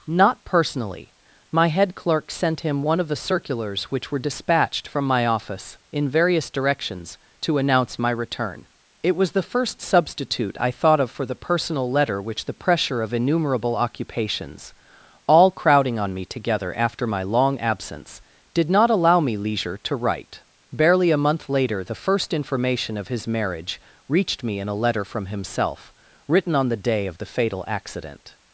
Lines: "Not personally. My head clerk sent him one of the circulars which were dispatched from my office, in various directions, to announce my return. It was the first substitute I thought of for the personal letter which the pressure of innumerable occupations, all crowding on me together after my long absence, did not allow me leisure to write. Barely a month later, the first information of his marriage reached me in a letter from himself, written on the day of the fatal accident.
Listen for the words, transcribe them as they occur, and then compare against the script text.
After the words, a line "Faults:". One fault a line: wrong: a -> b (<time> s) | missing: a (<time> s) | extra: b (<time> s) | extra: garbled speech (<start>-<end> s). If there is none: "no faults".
"Not personally. My head clerk sent him one of the circulars which were dispatched from my office, in various directions, to announce my return. It was the first substitute I thought of for the personal letter which the pressure of innumerable occupations, all crowding on me together after my long absence, did not allow me leisure to write. Barely a month later, the first information of his marriage reached me in a letter from himself, written on the day of the fatal accident.
Faults:
no faults